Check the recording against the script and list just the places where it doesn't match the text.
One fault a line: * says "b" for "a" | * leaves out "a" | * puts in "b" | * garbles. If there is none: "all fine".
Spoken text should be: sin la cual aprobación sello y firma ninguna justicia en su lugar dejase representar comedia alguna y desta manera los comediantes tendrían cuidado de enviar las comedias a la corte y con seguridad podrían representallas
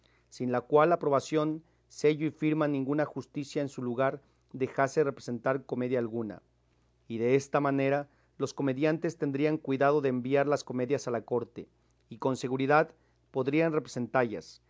all fine